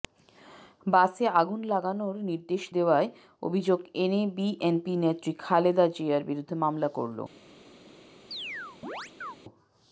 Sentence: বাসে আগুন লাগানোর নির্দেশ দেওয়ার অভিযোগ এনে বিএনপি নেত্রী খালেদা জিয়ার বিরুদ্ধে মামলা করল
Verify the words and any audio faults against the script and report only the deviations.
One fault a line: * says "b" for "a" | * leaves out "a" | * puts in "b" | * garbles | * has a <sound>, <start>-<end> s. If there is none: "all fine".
* has a chirp, 8.3-9.4 s